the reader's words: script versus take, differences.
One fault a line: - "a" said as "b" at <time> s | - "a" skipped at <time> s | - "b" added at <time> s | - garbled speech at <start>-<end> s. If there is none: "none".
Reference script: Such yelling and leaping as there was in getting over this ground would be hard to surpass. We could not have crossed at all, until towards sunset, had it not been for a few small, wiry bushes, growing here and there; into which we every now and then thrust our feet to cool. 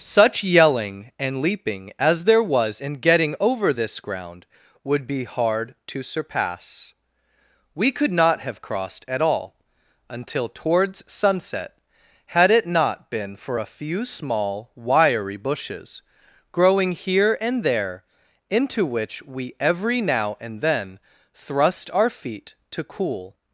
none